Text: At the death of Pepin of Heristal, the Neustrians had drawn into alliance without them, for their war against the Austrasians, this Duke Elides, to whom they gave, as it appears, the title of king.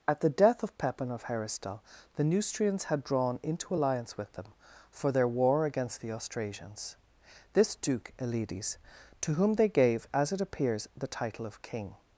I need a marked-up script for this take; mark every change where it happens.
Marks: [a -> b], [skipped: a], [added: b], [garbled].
At the death of Pepin of Heristal, the Neustrians had drawn into alliance [without -> with] them, for their war against the Austrasians, this Duke Elides, to whom they gave, as it appears, the title of king.